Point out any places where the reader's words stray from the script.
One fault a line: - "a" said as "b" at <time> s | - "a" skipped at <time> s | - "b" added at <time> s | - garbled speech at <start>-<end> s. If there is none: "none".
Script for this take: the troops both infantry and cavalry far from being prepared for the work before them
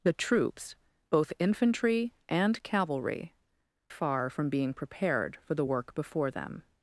none